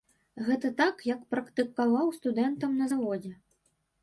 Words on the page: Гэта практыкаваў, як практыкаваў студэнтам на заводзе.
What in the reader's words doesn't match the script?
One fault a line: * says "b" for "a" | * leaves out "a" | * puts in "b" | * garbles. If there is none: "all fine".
* says "так" for "практыкаваў"